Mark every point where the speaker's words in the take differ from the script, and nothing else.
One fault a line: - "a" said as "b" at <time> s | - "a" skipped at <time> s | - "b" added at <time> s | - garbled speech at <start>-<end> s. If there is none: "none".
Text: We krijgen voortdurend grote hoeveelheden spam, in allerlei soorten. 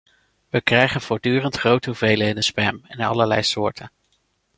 none